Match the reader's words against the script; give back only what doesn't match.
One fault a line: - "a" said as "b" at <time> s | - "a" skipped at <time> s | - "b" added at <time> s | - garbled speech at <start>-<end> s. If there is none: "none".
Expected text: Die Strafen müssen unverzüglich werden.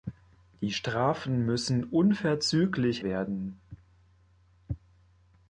none